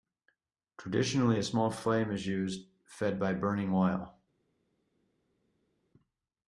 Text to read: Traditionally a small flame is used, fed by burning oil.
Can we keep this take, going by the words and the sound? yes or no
yes